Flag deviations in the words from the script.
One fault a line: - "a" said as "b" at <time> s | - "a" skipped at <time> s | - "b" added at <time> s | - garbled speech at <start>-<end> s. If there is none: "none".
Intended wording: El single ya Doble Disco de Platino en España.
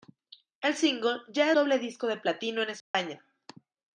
none